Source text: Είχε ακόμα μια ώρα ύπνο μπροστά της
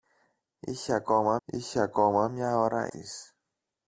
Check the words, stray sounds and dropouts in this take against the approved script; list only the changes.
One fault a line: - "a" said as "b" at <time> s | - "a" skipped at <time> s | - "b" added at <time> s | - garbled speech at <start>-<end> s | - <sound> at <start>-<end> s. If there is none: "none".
- "είχε ακόμα" added at 1.4 s
- "ύπνο μπροστά" skipped at 2.9 s